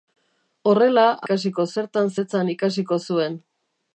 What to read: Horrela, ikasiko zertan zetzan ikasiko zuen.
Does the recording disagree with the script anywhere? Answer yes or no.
no